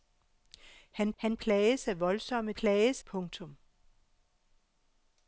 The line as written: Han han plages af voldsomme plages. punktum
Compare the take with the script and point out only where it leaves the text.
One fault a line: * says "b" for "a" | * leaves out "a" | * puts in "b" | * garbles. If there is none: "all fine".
all fine